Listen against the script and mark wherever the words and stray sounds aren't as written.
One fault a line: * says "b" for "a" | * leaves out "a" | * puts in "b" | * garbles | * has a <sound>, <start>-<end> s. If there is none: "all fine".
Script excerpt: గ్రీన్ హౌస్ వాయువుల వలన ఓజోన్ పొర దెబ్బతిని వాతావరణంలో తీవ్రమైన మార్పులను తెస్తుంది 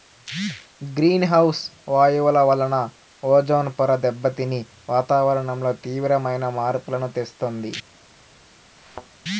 * has a thud, 8.8-9.1 s